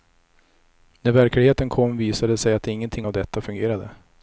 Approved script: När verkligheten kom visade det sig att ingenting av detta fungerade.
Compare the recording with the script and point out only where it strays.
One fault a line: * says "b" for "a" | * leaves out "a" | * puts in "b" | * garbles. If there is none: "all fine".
all fine